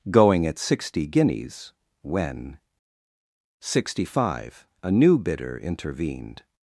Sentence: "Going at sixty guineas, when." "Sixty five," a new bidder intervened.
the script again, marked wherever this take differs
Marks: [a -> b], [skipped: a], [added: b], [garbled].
"Going at sixty guineas, when." "Sixty five," a new bidder intervened.